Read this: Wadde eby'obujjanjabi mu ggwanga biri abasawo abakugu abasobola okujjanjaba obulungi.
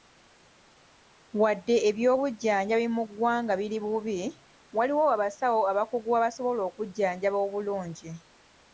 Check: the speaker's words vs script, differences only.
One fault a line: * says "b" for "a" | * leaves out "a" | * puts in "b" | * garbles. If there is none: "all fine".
* puts in "bubi waliwo"